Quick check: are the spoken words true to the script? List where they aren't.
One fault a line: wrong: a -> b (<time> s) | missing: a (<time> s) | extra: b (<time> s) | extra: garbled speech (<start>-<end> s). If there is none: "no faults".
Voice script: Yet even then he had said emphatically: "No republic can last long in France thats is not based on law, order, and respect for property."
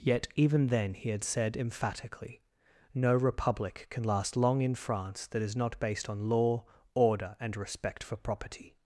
wrong: thats -> that (5.3 s)